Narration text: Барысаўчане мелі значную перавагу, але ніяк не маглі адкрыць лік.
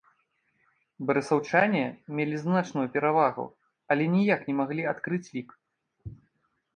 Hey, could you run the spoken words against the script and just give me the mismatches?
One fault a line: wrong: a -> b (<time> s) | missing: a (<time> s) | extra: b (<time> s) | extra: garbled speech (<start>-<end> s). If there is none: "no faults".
no faults